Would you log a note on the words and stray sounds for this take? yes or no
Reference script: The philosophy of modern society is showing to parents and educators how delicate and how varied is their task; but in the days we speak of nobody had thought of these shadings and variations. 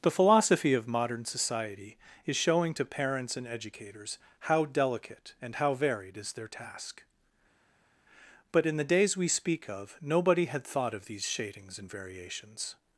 no